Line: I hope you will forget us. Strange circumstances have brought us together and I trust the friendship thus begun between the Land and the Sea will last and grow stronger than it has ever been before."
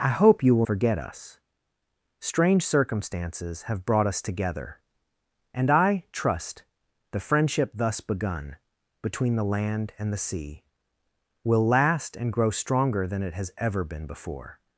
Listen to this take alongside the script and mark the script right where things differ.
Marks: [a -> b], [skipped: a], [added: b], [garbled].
I hope you will forget us. Strange circumstances have brought us together and I trust the friendship thus begun between the Land and the Sea will last and grow stronger than it has ever been before."